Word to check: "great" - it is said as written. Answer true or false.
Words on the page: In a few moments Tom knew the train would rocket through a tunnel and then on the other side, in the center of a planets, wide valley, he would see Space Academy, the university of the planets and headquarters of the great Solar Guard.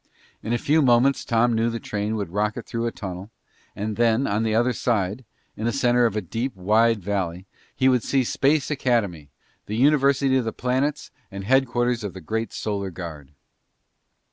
true